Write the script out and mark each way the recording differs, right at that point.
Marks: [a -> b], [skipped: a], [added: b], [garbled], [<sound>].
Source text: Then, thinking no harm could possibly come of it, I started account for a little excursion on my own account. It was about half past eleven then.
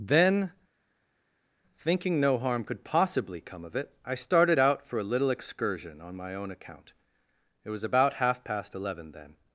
Then, thinking no harm could possibly come of it, I started [account -> out] for a little excursion on my own account. It was about half past eleven then.